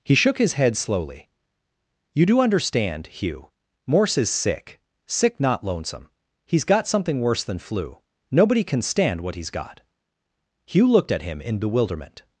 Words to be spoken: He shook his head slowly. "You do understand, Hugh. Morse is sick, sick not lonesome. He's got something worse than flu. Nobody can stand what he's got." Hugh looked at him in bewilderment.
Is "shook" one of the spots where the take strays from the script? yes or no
no